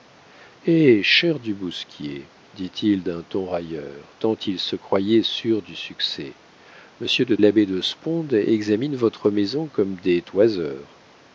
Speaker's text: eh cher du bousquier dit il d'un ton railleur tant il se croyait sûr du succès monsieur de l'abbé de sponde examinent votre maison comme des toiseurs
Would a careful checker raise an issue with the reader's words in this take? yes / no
no